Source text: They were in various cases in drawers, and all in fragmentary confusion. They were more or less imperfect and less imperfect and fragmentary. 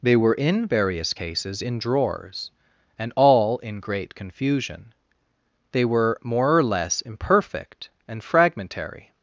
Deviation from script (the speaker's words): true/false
true